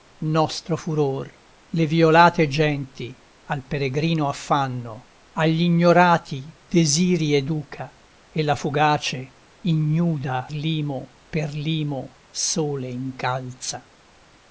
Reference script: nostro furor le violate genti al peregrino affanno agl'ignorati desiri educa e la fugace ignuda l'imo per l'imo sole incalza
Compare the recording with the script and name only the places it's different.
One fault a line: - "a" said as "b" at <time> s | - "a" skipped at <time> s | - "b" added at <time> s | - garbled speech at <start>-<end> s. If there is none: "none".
none